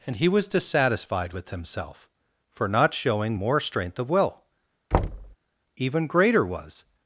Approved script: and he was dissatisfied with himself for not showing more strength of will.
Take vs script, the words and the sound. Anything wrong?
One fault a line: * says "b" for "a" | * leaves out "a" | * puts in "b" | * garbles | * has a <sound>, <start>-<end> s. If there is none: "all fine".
* has a thud, 4.9-5.4 s
* puts in "Even greater was"